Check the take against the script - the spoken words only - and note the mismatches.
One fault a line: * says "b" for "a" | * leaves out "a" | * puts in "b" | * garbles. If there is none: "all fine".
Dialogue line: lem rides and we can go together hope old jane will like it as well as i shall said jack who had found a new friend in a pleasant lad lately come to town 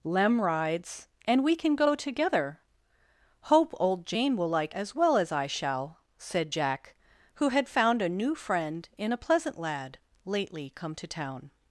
* leaves out "it"